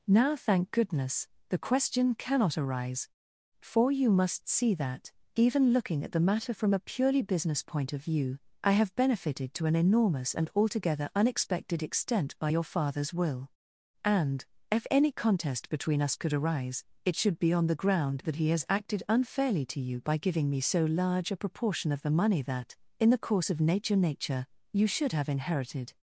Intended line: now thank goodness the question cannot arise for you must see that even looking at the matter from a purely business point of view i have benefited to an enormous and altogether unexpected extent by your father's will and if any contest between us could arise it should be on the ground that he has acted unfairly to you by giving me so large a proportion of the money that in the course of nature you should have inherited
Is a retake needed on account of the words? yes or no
yes